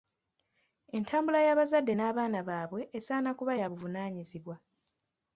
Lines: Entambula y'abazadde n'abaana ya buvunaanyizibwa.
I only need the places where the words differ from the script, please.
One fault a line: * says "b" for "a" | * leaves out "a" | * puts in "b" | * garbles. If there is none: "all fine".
* puts in "baabwe esaana kuba"